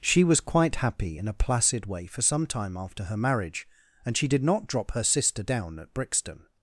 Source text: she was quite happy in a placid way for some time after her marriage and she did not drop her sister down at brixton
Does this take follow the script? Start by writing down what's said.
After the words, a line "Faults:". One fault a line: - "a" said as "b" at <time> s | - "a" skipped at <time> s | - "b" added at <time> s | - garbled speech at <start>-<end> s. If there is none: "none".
she was quite happy in a placid way for some time after her marriage and she did not drop her sister down at brixton
Faults:
none